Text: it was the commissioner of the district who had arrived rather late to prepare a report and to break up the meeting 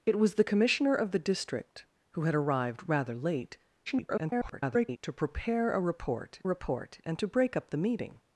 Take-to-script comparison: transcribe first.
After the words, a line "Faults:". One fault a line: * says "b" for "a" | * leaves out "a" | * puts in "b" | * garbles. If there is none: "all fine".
it was the commissioner of the district who had arrived rather late [garbled] to prepare a report report and to break up the meeting
Faults:
* garbles
* puts in "report"